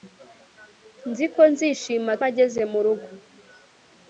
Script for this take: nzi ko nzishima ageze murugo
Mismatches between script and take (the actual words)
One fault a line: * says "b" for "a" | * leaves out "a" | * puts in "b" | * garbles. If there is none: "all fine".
all fine